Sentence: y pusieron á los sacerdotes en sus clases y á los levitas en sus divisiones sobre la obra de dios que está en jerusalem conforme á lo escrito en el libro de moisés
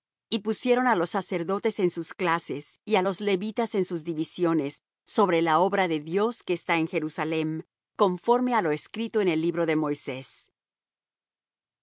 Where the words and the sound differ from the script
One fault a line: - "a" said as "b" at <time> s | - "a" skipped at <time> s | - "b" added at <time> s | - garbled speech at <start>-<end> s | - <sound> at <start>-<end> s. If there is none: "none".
none